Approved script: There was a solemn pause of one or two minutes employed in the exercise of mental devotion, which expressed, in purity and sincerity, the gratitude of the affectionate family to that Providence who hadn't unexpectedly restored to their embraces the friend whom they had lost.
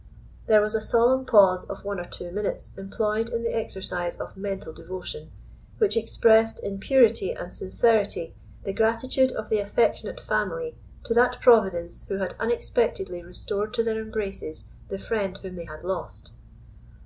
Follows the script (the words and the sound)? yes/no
no